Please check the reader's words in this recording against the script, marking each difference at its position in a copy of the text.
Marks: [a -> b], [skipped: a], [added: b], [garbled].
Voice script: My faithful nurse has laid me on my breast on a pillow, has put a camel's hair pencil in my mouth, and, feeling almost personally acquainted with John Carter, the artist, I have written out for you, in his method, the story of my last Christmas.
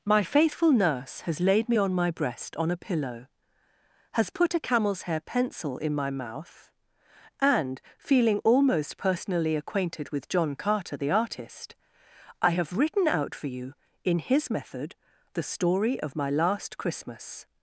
My faithful nurse has laid me on my breast on a pillow, has put a camel's hair pencil in my mouth, and, feeling almost personally acquainted with John Carter, the artist, I have written out for you, in his method, the story of my last Christmas.